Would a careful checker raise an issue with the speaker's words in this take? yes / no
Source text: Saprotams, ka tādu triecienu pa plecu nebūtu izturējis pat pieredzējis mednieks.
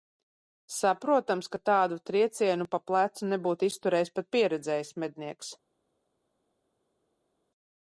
no